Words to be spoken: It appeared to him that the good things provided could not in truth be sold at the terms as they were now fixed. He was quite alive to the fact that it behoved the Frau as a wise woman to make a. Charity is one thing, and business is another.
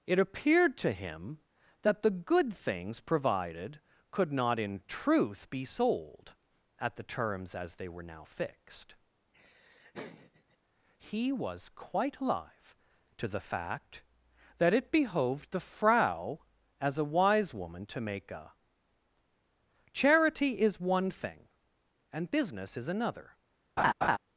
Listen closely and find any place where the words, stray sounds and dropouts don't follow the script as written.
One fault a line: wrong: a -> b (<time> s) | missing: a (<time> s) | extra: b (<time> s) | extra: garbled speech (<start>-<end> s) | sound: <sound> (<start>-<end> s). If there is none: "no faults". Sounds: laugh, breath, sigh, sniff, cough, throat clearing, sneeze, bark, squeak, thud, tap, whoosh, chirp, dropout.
sound: laugh (9.3-10.6 s)
sound: laugh (23.8-24.2 s)